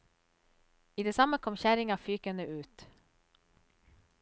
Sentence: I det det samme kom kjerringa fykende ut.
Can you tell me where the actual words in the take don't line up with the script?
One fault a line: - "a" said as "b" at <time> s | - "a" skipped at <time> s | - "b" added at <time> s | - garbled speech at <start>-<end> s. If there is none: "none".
- "det" skipped at 1.1 s